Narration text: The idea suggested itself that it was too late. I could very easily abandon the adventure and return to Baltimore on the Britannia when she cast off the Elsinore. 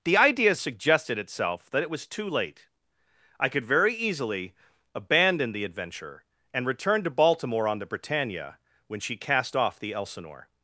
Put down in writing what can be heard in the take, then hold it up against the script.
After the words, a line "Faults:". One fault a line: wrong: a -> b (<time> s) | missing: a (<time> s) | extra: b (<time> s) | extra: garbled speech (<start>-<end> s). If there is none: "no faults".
The idea suggested itself that it was too late. I could very easily abandon the adventure and return to Baltimore on the Britannia when she cast off the Elsinore.
Faults:
no faults